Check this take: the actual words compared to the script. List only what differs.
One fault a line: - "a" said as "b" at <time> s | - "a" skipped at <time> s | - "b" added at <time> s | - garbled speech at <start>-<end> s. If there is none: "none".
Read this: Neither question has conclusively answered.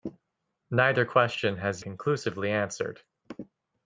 none